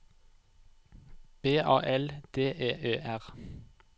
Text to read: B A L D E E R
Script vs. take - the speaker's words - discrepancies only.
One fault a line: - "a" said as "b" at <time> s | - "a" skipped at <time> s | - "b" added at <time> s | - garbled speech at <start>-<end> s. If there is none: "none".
none